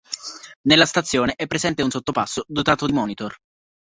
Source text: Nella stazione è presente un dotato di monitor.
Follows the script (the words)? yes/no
no